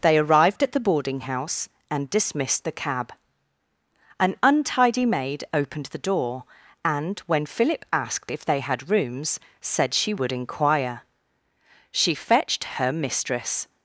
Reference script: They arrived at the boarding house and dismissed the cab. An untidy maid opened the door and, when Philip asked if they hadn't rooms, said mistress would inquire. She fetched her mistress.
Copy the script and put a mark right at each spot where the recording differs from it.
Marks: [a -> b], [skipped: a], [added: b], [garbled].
They arrived at the boarding house and dismissed the cab. An untidy maid opened the door and, when Philip asked if they [hadn't -> had] rooms, said [mistress -> she] would inquire. She fetched her mistress.